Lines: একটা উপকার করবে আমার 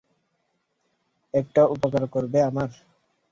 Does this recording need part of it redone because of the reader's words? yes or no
no